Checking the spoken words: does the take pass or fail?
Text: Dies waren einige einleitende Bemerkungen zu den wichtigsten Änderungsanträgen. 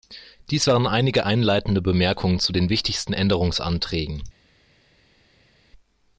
pass